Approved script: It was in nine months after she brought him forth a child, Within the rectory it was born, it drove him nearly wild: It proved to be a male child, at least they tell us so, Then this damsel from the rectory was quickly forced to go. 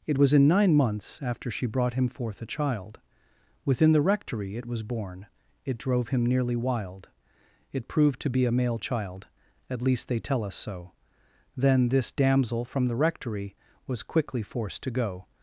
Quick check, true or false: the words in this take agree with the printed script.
true